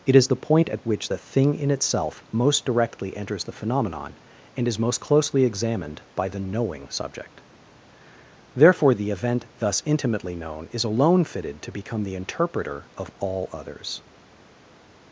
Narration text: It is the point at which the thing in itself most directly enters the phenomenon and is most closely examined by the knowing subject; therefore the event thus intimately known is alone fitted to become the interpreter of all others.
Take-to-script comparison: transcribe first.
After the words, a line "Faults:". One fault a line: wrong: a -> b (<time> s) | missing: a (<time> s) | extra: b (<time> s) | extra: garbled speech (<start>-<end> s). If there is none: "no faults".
It is the point at which the thing in itself most directly enters the phenomenon and is most closely examined by the knowing subject; therefore the event thus intimately known is alone fitted to become the interpreter of all others.
Faults:
no faults